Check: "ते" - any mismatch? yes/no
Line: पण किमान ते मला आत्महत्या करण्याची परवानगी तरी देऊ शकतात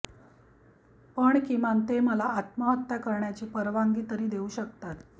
no